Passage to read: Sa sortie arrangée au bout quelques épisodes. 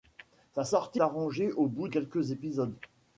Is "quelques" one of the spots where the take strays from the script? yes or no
no